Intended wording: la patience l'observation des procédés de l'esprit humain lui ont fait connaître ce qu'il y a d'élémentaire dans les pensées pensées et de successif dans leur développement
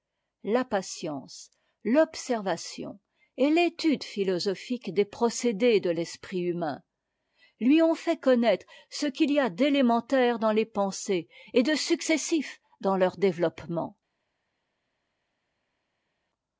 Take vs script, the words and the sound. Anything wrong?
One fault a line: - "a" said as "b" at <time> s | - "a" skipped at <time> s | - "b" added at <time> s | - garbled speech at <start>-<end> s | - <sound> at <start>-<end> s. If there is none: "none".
- "et l'étude philosophique" added at 3.4 s
- "pensées" skipped at 11.3 s